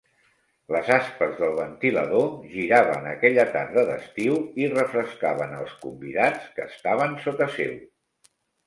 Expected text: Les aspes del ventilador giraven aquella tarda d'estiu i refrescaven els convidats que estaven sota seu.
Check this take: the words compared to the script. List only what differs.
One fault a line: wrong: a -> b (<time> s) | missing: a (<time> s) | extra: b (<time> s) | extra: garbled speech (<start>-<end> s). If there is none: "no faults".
no faults